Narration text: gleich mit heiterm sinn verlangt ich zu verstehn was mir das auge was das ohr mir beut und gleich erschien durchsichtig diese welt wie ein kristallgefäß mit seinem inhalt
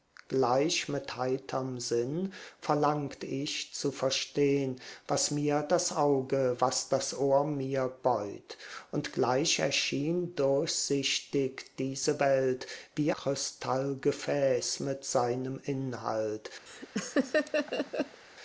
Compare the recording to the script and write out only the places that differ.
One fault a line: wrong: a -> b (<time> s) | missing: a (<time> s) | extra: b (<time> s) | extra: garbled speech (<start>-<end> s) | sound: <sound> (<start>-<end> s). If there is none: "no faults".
missing: ein (13.1 s)
sound: laugh (16.7-18.2 s)